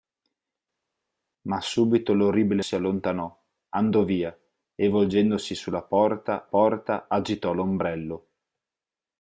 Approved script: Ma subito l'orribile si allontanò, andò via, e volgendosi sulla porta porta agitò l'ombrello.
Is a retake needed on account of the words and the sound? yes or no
no